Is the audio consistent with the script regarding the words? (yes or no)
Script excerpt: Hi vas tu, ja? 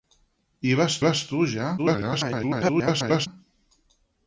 no